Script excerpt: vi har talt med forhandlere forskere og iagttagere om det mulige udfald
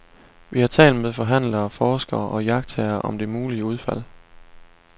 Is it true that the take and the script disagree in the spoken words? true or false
false